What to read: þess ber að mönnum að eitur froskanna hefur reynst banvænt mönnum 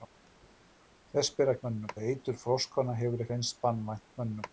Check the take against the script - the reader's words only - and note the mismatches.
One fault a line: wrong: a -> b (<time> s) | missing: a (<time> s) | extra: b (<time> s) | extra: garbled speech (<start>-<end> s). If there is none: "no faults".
no faults